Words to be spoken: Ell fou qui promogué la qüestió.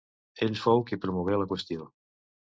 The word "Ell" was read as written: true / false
true